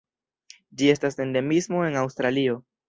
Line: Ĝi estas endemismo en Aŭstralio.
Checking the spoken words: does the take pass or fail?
pass